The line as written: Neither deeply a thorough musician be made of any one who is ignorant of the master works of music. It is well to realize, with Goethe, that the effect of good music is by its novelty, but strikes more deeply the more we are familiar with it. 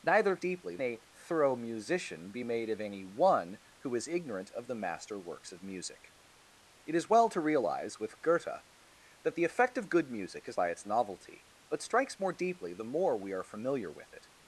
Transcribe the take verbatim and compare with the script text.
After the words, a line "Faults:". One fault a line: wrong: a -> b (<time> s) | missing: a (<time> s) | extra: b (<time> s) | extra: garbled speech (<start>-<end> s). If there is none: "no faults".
Neither deeply a thorough musician be made of any one who is ignorant of the master works of music. It is well to realize, with Goethe, that the effect of good music is by its novelty, but strikes more deeply the more we are familiar with it.
Faults:
no faults